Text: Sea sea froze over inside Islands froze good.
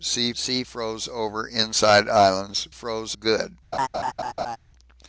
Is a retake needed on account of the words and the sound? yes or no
yes